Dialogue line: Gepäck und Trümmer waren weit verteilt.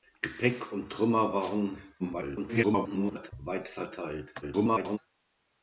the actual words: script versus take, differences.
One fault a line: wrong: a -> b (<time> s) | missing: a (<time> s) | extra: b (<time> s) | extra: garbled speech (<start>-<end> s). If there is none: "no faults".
extra: garbled speech (2.0-3.3 s)
extra: garbled speech (4.4-5.0 s)